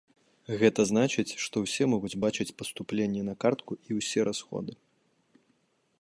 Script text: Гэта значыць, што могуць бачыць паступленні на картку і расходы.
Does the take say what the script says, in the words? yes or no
no